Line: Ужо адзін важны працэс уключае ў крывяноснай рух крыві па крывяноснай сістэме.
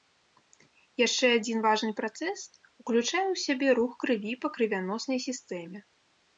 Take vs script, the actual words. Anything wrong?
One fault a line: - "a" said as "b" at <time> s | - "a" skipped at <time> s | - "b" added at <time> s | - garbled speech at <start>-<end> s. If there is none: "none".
- "Ужо" said as "Яшчэ" at 1.0 s
- "крывяноснай" said as "сябе" at 3.5 s